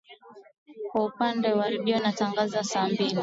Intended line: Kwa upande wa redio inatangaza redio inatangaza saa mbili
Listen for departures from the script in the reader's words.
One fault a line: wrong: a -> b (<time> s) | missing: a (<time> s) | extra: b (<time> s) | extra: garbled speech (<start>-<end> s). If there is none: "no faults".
missing: redio inatangaza (2.6 s)